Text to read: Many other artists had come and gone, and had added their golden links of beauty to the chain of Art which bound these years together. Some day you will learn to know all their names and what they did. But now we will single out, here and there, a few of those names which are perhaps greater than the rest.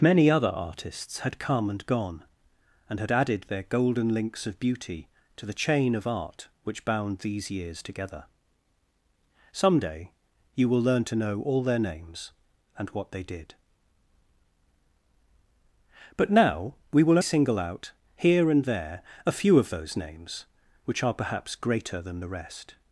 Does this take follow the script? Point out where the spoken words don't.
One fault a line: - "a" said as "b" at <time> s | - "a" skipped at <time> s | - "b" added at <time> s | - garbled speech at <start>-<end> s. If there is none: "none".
none